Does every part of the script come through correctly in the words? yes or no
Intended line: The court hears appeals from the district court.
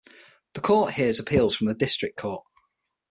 yes